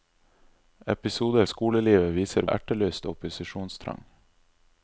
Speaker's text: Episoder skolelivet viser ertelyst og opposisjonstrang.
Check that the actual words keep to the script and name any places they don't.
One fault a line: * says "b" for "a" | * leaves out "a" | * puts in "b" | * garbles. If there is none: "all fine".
all fine